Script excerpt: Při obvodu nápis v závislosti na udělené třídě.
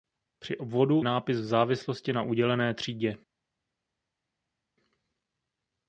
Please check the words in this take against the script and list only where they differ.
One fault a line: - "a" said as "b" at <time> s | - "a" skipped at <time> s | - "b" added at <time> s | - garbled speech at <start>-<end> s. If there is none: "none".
none